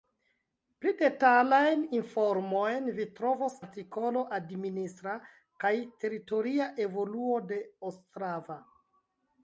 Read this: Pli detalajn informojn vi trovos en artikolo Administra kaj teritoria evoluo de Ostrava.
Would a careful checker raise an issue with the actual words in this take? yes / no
yes